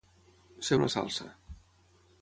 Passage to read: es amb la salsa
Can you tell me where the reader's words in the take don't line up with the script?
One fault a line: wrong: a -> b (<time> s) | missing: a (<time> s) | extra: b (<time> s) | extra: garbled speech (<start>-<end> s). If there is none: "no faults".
no faults